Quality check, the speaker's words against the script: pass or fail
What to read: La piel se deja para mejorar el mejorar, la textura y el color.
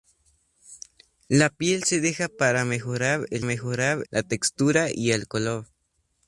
pass